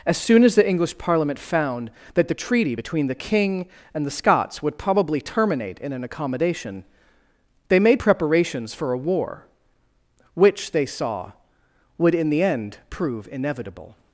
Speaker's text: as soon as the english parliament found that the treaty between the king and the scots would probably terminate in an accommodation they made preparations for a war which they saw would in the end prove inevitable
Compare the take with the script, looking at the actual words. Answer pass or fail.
pass